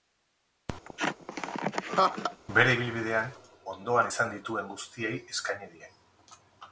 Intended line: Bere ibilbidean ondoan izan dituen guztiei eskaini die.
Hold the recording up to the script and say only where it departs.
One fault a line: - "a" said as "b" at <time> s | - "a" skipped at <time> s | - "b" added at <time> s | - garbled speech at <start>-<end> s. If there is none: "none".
none